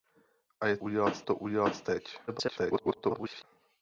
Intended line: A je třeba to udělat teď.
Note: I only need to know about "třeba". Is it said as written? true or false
false